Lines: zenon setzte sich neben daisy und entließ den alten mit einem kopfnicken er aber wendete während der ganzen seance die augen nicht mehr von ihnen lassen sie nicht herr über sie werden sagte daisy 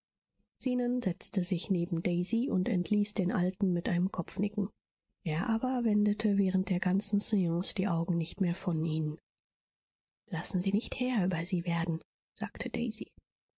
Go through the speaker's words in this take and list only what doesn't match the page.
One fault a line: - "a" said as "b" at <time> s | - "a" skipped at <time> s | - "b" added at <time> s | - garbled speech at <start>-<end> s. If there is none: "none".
none